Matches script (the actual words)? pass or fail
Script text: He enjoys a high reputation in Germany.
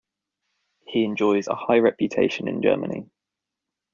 pass